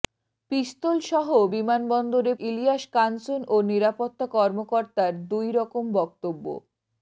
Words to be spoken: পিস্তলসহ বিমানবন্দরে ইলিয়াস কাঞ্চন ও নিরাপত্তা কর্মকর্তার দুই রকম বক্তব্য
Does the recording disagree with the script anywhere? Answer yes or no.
no